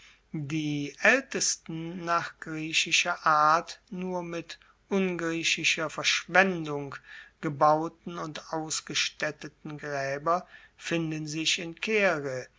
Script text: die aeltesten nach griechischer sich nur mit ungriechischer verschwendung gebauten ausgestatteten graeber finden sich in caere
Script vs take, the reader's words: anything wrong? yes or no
yes